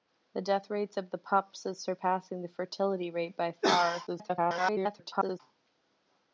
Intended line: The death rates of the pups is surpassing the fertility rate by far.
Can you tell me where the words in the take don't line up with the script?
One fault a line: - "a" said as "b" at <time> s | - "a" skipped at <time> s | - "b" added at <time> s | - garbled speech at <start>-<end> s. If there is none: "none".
- garbled speech at 4.1-5.4 s